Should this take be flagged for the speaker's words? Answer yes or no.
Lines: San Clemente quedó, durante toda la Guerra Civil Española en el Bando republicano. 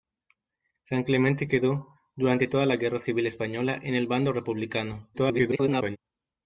yes